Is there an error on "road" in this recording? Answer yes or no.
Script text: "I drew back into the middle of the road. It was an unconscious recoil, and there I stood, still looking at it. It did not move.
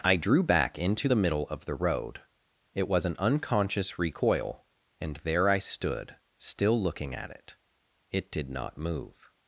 no